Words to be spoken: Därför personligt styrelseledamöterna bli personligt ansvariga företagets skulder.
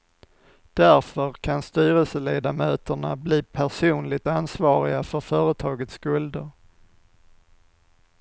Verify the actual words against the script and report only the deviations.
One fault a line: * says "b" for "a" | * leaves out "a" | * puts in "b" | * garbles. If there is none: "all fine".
* says "kan" for "personligt"
* puts in "för"